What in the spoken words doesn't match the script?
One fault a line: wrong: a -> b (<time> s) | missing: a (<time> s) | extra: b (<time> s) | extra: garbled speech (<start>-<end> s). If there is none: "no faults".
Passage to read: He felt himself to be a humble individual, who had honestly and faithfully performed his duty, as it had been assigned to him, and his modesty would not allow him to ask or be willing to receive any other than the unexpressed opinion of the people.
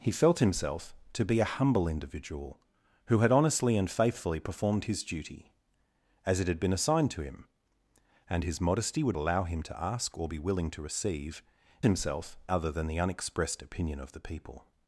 missing: not (9.2 s)
wrong: any -> himself (11.8 s)